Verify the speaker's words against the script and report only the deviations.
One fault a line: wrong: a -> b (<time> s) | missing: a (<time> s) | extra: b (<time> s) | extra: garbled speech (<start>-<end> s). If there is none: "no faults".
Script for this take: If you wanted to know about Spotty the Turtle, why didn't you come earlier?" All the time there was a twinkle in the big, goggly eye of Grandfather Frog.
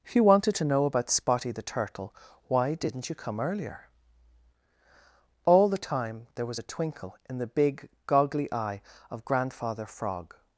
no faults